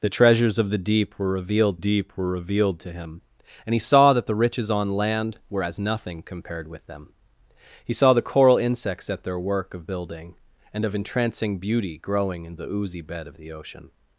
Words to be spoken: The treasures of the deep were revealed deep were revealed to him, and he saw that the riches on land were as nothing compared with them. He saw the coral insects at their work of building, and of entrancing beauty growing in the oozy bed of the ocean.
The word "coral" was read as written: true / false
true